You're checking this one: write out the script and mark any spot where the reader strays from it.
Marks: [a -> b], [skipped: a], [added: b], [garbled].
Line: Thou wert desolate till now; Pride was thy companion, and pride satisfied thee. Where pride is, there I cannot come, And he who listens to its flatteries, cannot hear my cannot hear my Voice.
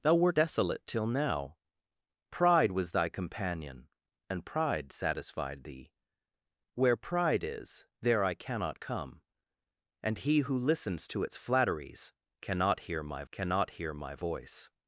Thou wert desolate till now; Pride was thy companion, and pride satisfied thee. Where pride is, there I cannot come, And he who listens to its flatteries, cannot hear my cannot hear my Voice.